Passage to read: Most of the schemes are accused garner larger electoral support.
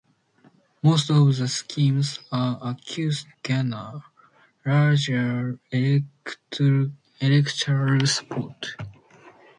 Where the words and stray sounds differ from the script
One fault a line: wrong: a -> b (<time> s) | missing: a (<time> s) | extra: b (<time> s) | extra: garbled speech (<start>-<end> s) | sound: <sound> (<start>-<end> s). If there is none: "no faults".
no faults